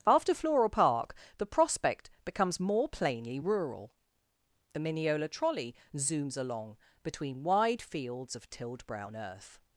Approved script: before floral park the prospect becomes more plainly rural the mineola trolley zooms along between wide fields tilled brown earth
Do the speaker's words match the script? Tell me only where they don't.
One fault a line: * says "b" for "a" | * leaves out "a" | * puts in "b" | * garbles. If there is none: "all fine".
* says "after" for "before"
* puts in "of"